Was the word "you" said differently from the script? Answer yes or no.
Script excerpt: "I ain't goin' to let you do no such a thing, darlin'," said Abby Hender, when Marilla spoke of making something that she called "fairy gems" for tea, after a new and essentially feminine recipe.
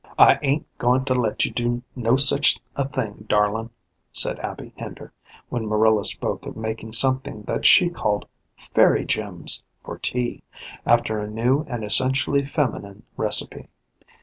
no